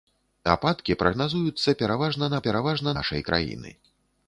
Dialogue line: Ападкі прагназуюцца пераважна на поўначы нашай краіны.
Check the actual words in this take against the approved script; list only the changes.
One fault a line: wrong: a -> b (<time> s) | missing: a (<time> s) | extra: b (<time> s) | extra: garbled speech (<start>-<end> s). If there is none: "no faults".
wrong: поўначы -> пераважна (2.5 s)